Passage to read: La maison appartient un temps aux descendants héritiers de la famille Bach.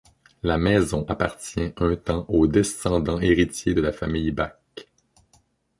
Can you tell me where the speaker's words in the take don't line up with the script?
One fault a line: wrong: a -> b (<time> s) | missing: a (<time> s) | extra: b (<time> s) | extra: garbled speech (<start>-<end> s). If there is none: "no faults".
no faults